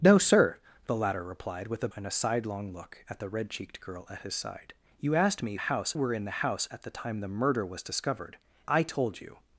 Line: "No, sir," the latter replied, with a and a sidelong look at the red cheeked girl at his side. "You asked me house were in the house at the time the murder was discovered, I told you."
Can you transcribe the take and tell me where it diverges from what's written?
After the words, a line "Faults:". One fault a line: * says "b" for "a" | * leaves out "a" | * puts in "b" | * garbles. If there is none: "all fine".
"No, sir," the latter replied, with a and a sidelong look at the red cheeked girl at his side. "You asked me house were in the house at the time the murder was discovered, I told you."
Faults:
all fine